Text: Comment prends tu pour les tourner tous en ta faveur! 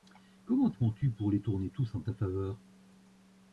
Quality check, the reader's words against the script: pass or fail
pass